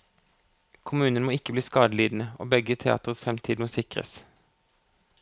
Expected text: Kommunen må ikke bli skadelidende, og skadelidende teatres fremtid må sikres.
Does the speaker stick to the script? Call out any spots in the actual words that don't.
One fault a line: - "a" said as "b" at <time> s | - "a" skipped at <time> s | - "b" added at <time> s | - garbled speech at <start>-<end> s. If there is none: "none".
- "skadelidende" said as "begge" at 2.5 s